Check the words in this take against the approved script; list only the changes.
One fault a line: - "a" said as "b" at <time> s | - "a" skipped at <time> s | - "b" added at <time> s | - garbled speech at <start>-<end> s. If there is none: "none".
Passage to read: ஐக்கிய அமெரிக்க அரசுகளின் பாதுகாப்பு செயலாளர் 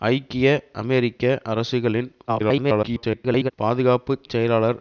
- garbled speech at 2.3-3.5 s